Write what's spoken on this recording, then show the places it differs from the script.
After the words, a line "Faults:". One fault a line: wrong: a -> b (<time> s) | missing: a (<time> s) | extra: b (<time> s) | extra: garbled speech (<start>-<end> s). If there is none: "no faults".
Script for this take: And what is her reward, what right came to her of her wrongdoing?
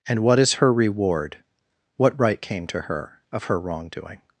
And what is her reward, what right came to her of her wrongdoing?
Faults:
no faults